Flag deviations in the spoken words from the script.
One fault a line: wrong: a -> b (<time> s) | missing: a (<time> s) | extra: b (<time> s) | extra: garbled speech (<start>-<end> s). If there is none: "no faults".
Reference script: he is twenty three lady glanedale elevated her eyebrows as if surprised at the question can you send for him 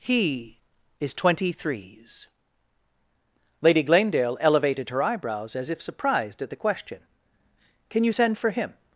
wrong: three -> threes (1.5 s)